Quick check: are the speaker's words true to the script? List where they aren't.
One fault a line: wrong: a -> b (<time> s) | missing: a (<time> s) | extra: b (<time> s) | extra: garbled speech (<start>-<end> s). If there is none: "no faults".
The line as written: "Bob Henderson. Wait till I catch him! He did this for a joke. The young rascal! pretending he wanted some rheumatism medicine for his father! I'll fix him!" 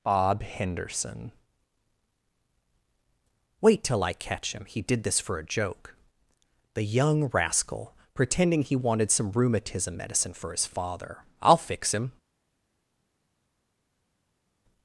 no faults